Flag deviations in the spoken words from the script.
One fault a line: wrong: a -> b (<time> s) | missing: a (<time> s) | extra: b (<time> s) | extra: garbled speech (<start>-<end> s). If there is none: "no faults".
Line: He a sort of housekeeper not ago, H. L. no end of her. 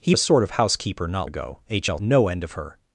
no faults